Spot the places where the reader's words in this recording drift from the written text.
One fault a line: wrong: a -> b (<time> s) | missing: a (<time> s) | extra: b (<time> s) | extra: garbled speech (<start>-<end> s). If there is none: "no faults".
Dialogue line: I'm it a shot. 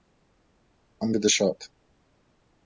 no faults